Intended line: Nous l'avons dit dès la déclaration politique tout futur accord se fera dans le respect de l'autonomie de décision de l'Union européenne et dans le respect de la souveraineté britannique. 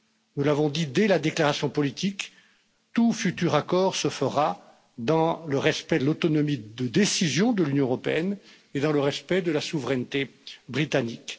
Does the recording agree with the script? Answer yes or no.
yes